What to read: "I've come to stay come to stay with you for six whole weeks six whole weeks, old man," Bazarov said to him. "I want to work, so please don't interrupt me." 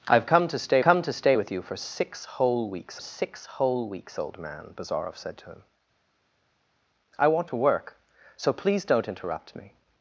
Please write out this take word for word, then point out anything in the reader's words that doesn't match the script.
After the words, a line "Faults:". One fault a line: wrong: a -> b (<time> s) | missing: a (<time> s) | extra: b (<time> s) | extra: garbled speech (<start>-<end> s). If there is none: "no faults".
"I've come to stay come to stay with you for six whole weeks six whole weeks, old man," Bazarov said to him. "I want to work, so please don't interrupt me."
Faults:
no faults